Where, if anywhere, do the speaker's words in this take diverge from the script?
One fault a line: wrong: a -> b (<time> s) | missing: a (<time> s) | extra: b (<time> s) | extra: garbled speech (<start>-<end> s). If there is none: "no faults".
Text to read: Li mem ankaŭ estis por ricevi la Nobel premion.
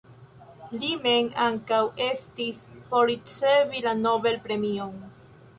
no faults